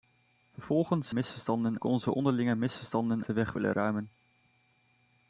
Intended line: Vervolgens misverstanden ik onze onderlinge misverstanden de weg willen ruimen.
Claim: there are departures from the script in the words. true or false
false